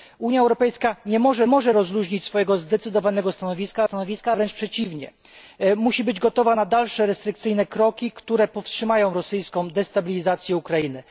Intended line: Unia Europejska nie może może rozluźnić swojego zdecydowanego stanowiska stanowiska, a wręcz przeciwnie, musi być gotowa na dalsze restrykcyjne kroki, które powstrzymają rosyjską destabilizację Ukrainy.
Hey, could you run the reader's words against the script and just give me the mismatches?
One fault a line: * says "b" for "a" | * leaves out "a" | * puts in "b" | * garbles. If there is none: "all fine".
all fine